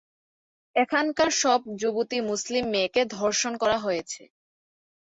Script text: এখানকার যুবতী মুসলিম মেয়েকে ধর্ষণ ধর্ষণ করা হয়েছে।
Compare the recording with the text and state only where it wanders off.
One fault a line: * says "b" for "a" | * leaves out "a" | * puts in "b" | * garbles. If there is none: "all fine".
* puts in "সব"
* leaves out "ধর্ষণ"